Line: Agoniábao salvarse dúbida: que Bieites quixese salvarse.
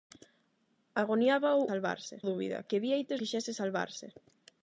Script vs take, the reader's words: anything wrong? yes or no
no